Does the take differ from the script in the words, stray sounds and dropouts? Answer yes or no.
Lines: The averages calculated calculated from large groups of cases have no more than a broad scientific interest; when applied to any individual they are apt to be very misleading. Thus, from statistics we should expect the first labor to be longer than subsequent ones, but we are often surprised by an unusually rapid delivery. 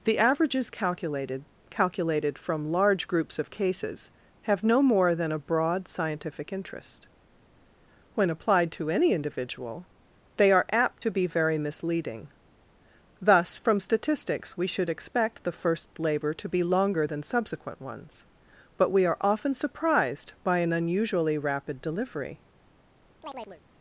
yes